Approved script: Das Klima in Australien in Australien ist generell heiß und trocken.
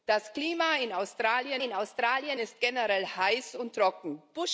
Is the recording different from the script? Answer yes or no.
no